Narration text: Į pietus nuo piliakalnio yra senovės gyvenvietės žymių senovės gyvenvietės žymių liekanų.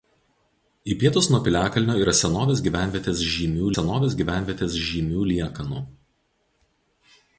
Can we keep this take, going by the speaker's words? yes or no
yes